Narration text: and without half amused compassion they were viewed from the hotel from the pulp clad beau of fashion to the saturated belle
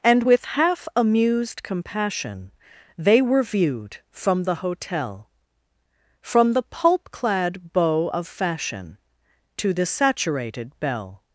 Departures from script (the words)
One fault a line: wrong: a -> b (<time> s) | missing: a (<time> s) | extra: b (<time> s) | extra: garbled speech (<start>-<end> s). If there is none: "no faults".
wrong: without -> with (0.2 s)